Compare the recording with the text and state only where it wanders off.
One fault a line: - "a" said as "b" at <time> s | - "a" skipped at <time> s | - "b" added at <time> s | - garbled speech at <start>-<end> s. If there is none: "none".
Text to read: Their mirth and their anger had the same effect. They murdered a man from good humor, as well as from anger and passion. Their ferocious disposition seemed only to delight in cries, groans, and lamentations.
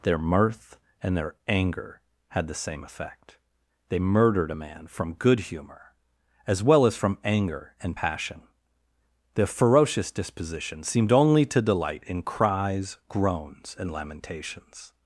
none